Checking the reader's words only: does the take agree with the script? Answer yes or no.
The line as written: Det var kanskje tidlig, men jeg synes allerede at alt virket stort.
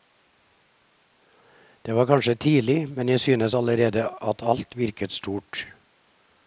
yes